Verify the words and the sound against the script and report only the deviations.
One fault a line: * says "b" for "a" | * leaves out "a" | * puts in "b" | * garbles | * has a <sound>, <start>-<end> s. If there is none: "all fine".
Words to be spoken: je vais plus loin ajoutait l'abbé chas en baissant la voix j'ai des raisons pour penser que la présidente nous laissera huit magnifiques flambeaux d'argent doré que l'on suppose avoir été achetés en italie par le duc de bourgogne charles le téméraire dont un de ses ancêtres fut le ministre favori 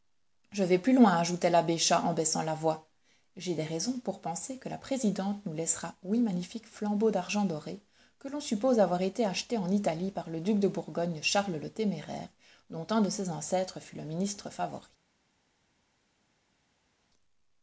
all fine